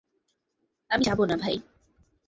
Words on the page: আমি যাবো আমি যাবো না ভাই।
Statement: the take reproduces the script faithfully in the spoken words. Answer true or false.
false